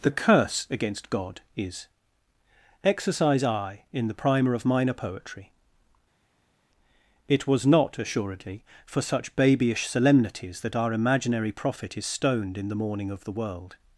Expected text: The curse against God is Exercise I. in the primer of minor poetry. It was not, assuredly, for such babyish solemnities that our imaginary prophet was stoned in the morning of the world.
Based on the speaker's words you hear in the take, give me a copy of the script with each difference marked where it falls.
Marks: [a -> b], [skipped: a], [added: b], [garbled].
The curse against God is Exercise I. in the primer of minor poetry. It was not, assuredly, for such babyish solemnities that our imaginary prophet [was -> is] stoned in the morning of the world.